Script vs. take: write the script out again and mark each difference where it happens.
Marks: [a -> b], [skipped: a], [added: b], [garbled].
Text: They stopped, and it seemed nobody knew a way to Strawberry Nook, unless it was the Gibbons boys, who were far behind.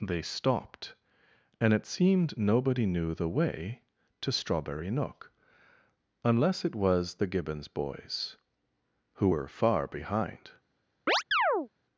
They stopped, and it seemed nobody knew [a -> the] way to Strawberry Nook, unless it was the Gibbons boys, who were far behind.